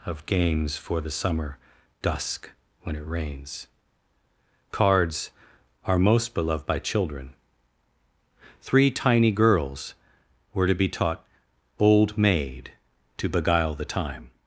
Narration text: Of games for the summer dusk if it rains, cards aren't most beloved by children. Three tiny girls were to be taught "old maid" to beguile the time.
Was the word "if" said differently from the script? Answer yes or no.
yes